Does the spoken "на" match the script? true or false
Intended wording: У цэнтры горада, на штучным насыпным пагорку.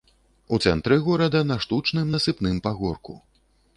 true